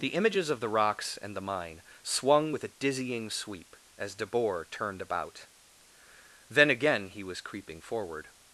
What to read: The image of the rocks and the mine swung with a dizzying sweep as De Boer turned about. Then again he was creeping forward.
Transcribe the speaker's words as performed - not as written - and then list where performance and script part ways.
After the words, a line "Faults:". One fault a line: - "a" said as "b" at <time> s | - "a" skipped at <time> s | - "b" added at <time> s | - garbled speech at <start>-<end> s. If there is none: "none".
The images of the rocks and the mine swung with a dizzying sweep as De Boer turned about. Then again he was creeping forward.
Faults:
- "image" said as "images" at 0.1 s